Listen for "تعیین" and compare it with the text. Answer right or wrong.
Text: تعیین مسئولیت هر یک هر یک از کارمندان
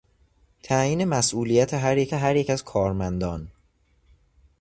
right